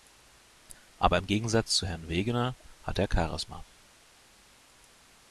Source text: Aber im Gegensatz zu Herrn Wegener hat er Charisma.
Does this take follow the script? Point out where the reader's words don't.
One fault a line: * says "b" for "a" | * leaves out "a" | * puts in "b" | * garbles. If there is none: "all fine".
all fine